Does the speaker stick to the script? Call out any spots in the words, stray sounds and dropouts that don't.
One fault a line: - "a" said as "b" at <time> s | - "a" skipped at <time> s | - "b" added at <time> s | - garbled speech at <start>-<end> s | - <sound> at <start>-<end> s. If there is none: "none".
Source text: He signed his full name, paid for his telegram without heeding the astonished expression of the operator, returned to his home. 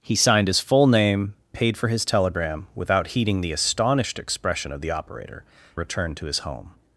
none